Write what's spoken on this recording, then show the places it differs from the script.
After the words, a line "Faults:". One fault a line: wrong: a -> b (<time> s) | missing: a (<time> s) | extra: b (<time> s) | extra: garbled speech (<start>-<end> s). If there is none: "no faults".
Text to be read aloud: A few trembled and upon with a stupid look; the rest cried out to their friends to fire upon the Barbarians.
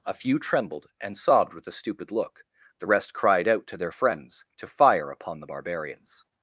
A few trembled and sobbed with a stupid look; the rest cried out to their friends to fire upon the Barbarians.
Faults:
wrong: upon -> sobbed (1.1 s)